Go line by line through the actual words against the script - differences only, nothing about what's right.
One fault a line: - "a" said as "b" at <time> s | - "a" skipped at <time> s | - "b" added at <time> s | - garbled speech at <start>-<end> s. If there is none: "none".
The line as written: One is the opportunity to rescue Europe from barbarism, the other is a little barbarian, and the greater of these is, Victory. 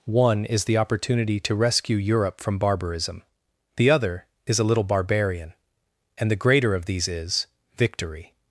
none